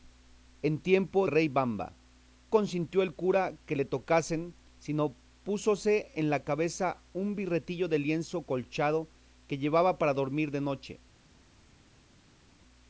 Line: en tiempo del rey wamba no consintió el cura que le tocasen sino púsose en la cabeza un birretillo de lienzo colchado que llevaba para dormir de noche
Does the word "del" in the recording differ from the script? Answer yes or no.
yes